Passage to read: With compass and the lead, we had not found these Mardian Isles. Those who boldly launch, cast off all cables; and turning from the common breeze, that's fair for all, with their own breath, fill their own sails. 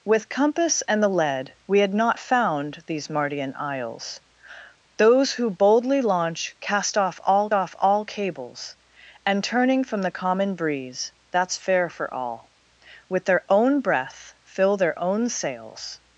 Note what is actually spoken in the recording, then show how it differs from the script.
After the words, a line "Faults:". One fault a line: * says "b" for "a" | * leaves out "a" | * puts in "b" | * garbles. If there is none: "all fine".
With compass and the lead, we had not found these Mardian Isles. Those who boldly launch, cast off all off all cables; and turning from the common breeze, that's fair for all, with their own breath, fill their own sails.
Faults:
* puts in "off all"